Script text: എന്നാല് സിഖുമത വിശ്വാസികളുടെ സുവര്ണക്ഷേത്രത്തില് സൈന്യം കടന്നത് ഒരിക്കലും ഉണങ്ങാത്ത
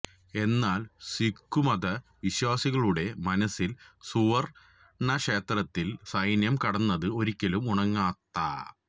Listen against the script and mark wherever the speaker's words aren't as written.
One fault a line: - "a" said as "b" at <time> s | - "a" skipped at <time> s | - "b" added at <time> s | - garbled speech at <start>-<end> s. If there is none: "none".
- "മനസ്സില്" added at 3.2 s